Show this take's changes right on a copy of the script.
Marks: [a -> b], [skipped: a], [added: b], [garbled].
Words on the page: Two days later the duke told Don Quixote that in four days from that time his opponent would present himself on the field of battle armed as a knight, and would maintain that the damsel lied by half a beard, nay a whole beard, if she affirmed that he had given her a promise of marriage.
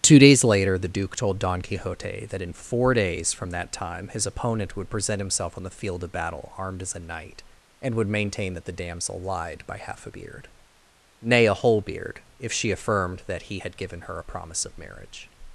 Two days later the duke told Don Quixote that in four days from that time his opponent would present himself on the field of battle armed as a knight, and would maintain that the damsel lied by half a beard, nay a whole beard, if she affirmed that he had given her a promise of marriage.